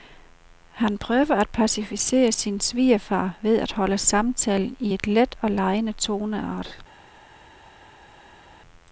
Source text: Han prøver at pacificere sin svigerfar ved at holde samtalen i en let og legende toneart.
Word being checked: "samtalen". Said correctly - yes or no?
yes